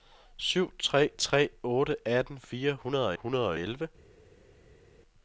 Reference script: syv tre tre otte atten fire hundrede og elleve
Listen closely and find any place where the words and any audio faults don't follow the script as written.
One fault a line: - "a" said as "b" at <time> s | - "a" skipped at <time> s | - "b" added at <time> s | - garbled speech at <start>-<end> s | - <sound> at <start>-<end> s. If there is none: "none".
- "hundrede og" added at 3.2 s